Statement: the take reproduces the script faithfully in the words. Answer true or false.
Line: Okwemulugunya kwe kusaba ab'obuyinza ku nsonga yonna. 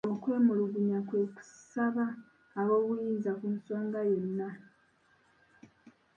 true